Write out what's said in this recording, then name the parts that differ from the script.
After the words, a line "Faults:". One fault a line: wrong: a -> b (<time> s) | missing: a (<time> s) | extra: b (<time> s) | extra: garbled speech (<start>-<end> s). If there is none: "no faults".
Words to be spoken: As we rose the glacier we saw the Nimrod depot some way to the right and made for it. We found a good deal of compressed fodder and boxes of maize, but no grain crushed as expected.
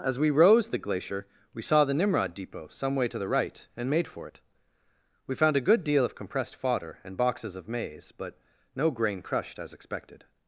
As we rose the glacier we saw the Nimrod depot some way to the right and made for it. We found a good deal of compressed fodder and boxes of maize, but no grain crushed as expected.
Faults:
no faults